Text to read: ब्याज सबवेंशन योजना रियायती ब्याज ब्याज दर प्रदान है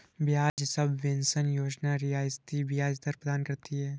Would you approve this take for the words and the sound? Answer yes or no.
no